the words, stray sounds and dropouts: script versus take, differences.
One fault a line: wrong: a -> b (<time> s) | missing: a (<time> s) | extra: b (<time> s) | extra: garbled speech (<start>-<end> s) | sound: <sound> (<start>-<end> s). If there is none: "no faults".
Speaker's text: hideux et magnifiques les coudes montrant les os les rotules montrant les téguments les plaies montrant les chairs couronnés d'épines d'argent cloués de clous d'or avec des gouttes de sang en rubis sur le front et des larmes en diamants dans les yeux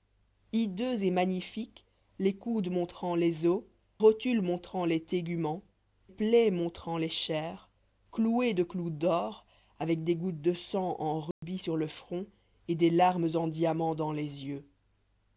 missing: les (3.6 s)
missing: les (5.6 s)
missing: couronnés d'épines d'argent (7.7 s)
sound: dropout (11.3-11.4 s)